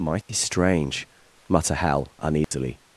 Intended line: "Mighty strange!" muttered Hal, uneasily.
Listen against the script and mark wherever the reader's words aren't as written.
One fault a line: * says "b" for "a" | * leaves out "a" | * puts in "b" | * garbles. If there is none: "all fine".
* says "mutter" for "muttered"